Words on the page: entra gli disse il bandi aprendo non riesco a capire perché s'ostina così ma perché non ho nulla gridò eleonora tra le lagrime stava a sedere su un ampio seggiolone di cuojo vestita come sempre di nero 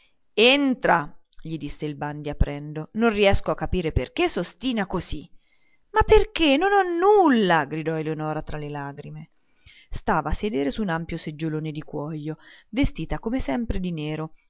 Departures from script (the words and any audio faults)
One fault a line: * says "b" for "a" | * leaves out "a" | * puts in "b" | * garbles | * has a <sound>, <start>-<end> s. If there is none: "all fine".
all fine